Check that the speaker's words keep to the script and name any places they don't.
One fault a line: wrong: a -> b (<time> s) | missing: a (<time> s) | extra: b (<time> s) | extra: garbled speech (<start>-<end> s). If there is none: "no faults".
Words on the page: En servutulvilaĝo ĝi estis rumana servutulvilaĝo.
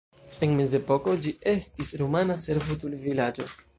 wrong: servutulvilaĝo -> mezepoko (0.6 s)